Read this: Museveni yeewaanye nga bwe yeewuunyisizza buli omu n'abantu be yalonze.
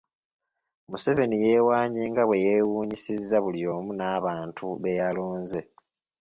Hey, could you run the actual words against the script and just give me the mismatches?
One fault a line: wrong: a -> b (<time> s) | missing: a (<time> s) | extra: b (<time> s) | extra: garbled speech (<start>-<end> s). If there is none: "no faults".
no faults